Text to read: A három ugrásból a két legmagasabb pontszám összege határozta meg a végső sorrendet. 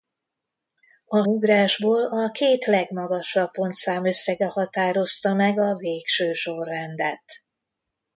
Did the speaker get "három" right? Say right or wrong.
wrong